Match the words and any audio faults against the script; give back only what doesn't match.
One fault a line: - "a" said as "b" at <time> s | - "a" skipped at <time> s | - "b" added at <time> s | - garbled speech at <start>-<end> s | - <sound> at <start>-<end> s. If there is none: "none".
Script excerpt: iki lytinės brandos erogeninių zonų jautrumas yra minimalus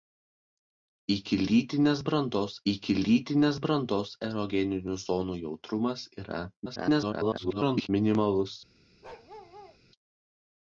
- "iki lytinės brandos" added at 2.7 s
- garbled speech at 6.7-7.9 s
- bark at 9.0-9.8 s